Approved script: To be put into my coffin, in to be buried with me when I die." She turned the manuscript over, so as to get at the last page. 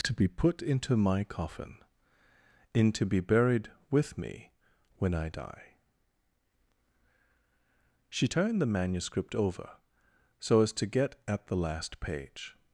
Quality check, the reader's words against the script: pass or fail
pass